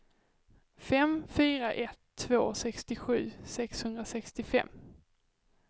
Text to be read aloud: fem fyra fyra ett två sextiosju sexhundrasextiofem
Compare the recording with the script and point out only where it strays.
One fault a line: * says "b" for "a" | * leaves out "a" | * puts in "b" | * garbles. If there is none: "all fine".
* leaves out "fyra"